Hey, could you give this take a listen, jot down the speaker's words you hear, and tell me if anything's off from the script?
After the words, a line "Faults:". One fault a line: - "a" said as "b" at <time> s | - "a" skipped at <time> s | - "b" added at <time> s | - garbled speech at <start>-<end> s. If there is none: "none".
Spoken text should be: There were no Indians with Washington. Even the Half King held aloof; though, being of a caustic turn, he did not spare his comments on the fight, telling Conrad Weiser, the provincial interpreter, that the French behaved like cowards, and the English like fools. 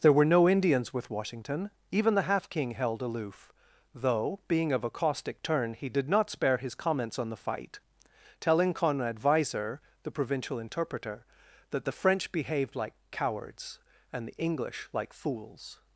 There were no Indians with Washington. Even the Half King held aloof; though, being of a caustic turn, he did not spare his comments on the fight, telling Conrad Weiser, the provincial interpreter, that the French behaved like cowards, and the English like fools.
Faults:
none